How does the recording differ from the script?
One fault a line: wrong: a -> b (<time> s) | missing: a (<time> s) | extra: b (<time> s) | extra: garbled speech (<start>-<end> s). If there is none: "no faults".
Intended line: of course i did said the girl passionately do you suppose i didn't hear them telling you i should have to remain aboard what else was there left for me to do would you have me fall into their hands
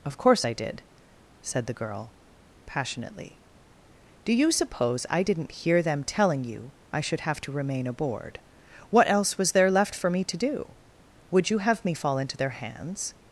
no faults